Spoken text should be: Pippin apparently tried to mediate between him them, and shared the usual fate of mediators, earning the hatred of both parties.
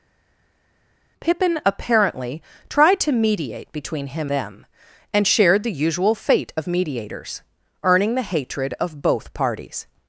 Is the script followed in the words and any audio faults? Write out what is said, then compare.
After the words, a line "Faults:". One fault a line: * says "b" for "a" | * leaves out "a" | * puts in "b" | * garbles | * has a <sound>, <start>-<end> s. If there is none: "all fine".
Pippin apparently tried to mediate between him them, and shared the usual fate of mediators, earning the hatred of both parties.
Faults:
all fine